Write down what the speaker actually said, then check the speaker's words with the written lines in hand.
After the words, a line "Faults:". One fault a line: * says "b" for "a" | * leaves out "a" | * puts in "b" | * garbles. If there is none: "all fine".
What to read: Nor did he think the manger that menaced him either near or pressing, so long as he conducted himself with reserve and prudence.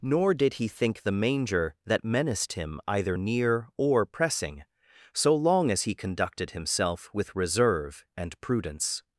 Nor did he think the manger that menaced him either near or pressing, so long as he conducted himself with reserve and prudence.
Faults:
all fine